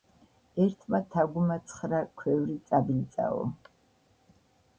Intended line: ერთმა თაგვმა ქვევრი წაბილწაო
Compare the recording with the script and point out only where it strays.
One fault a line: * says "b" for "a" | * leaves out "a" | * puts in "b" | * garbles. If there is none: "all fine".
* puts in "ცხრა"